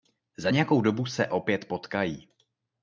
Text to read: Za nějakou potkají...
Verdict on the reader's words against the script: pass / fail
fail